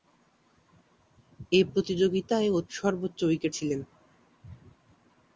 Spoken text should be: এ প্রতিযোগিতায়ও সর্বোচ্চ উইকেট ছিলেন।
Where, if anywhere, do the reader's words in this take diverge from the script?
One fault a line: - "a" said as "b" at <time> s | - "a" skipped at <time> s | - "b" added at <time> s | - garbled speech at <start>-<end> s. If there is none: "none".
none